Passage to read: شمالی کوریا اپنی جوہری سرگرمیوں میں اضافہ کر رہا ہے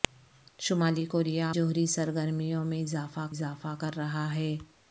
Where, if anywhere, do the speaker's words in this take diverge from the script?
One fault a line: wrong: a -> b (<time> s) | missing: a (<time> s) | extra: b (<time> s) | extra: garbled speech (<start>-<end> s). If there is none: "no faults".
missing: اپنی (1.5 s)
extra: اضافہ (3.3 s)